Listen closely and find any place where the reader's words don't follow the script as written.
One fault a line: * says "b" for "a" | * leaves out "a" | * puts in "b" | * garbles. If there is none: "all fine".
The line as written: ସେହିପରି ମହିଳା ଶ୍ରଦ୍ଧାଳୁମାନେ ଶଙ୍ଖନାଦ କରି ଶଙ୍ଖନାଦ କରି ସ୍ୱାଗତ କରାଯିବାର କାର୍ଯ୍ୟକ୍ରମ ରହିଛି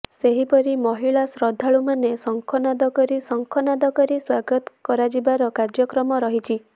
all fine